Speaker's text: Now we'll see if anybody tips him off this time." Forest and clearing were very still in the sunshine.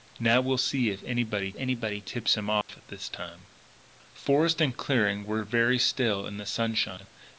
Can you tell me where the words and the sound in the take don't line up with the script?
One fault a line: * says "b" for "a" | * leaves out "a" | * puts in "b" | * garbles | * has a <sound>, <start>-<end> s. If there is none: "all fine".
* puts in "anybody"
* has a dropout, 2.6-2.7 s